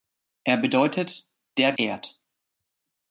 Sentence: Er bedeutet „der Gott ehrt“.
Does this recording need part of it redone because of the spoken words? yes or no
yes